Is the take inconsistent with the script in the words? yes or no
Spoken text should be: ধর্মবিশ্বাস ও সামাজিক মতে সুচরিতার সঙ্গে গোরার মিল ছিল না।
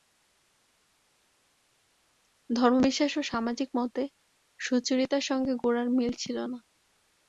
no